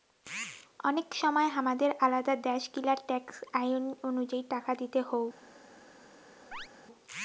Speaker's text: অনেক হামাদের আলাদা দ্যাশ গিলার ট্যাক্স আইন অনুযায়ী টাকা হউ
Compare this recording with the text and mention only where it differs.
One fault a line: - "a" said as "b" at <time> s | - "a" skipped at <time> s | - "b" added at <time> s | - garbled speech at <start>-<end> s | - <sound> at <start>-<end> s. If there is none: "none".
- "সময়" added at 1.1 s
- "দিতে" added at 4.8 s
- chirp at 6.5-6.7 s